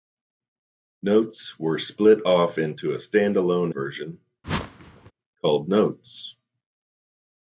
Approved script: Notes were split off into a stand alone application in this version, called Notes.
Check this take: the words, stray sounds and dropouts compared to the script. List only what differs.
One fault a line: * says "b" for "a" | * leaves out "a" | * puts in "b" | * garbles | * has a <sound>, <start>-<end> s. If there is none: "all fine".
* leaves out "application in this"
* has a whoosh, 4.4-5.1 s